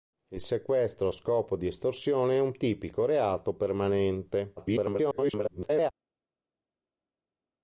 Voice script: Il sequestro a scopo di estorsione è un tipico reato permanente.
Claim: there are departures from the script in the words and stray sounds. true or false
true